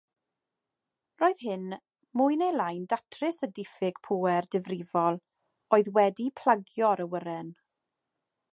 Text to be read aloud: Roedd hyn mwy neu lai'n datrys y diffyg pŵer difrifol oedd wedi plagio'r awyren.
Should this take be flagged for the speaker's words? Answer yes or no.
no